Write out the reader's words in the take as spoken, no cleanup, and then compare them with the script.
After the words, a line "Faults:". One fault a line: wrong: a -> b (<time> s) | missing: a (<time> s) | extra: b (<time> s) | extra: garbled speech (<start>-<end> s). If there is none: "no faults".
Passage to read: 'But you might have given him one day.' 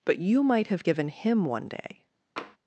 'But you might have given him one day.'
Faults:
no faults